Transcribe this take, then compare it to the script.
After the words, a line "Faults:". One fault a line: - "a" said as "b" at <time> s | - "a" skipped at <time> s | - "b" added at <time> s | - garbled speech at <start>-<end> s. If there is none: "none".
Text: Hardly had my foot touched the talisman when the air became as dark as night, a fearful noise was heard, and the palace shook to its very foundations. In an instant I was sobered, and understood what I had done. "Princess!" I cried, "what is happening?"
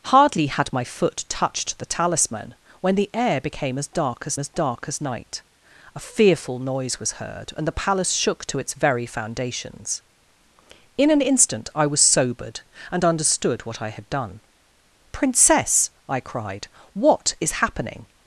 Hardly had my foot touched the talisman when the air became as dark as as dark as night, a fearful noise was heard, and the palace shook to its very foundations. In an instant I was sobered, and understood what I had done. "Princess!" I cried, "what is happening?"
Faults:
- "as dark as" added at 4.4 s